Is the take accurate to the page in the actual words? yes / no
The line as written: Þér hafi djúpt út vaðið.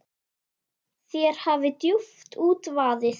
yes